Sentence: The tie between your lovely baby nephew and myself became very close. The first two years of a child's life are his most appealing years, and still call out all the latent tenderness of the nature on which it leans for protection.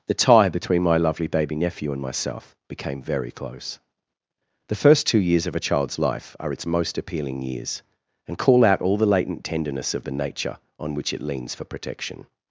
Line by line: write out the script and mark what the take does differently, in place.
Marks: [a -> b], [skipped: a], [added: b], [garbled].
The tie between [your -> my] lovely baby nephew and myself became very close. The first two years of a child's life are [his -> its] most appealing years, and [skipped: still] call out all the latent tenderness of the nature on which it leans for protection.